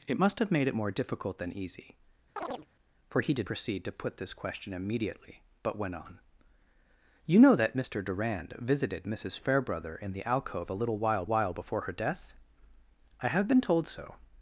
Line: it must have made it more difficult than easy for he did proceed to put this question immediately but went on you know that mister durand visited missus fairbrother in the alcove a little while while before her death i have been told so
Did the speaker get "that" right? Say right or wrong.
right